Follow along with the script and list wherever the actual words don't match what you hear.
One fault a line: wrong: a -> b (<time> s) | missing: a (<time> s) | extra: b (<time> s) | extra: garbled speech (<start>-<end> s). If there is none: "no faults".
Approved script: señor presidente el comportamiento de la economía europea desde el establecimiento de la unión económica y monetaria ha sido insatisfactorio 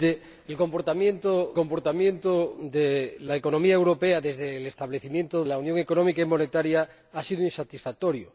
extra: comportamiento (1.5 s)
missing: de (5.4 s)